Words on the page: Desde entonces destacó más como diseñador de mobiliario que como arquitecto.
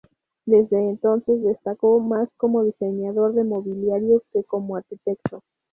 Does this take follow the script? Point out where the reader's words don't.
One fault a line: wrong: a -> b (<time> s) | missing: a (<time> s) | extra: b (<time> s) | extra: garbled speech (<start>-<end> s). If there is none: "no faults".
no faults